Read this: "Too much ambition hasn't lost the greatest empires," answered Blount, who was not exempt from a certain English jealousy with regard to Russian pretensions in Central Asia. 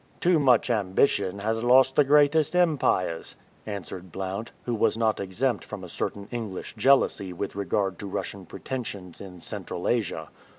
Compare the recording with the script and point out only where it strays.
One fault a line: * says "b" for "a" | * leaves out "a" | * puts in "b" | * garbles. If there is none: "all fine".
* says "has" for "hasn't"